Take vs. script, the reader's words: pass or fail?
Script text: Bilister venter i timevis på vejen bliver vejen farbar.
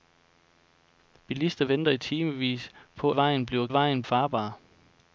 pass